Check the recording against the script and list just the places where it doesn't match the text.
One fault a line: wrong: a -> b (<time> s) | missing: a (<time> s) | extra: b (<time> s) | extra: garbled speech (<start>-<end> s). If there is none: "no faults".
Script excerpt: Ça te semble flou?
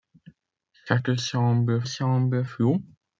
extra: semble (1.8 s)